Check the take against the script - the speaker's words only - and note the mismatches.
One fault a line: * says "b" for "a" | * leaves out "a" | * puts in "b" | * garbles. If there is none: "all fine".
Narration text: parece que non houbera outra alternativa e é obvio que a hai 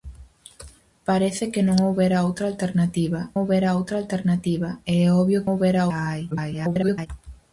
* puts in "houbera outra alternativa"
* says "houbera" for "que"
* garbles